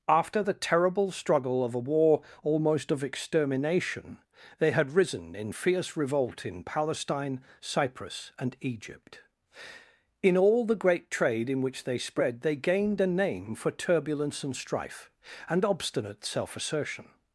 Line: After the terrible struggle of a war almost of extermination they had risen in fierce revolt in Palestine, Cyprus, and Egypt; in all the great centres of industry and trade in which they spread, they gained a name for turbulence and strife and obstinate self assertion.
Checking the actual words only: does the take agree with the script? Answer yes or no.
no